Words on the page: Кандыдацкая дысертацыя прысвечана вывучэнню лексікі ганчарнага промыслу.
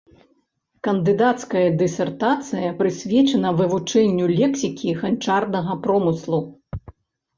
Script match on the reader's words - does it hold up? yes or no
yes